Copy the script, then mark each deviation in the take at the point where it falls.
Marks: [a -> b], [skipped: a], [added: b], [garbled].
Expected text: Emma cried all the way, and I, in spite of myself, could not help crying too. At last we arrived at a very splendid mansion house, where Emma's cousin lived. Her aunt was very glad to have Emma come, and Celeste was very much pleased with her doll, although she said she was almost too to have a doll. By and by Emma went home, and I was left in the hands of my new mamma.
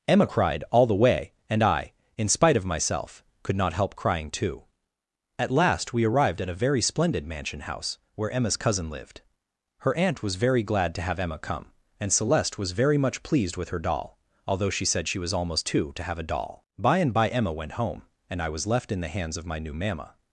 Emma cried all the way, and I, in spite of myself, could not help crying too. At last we arrived at a very splendid mansion house, where Emma's cousin lived. Her aunt was very glad to have Emma come, and Celeste was very much pleased with her doll, although she said she was almost too to have a doll. By and by Emma went home, and I was left in the hands of my new mamma.